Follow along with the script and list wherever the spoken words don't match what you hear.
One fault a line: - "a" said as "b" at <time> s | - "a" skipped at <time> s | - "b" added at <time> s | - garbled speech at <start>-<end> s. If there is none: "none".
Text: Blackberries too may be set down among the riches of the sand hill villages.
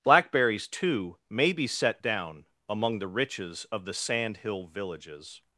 none